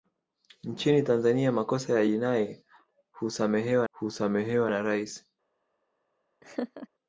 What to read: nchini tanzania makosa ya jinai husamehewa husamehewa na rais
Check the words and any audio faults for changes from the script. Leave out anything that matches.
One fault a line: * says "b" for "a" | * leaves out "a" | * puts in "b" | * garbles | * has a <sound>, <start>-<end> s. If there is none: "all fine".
* has a laugh, 6.4-6.9 s